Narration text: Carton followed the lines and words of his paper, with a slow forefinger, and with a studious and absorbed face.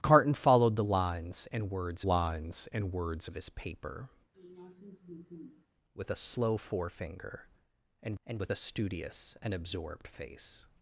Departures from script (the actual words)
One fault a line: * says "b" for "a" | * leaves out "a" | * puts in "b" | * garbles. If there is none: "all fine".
* puts in "lines and words"
* puts in "and"